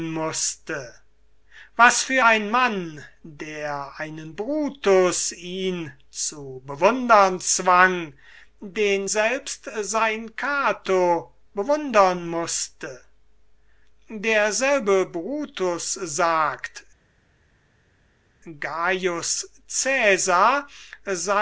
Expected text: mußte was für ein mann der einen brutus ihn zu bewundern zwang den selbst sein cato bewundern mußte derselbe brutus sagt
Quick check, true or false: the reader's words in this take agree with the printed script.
true